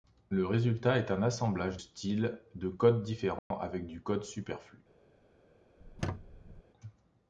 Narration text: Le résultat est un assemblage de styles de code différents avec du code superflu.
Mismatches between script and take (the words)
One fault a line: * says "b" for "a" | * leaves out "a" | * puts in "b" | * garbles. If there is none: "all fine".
* leaves out "de"